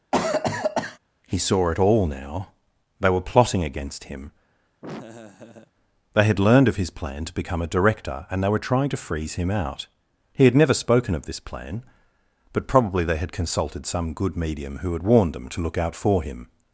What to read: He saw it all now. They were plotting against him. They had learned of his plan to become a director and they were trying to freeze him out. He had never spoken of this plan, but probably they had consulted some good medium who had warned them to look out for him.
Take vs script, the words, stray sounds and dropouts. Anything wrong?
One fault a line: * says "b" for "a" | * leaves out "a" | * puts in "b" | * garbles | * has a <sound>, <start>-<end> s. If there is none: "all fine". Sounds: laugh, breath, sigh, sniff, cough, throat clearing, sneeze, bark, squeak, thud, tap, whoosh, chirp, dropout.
* has a cough, 0.1-1.0 s
* has a laugh, 4.8-5.7 s